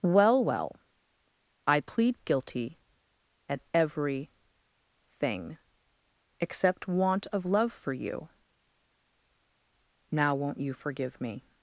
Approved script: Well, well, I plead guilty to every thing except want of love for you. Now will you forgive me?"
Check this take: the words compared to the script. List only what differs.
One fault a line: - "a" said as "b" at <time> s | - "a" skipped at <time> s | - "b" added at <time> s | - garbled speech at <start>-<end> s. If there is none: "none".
- "to" said as "at" at 3.5 s
- "will" said as "won't" at 10.3 s